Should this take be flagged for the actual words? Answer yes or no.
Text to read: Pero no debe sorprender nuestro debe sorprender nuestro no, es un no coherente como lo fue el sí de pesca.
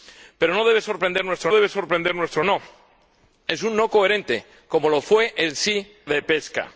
no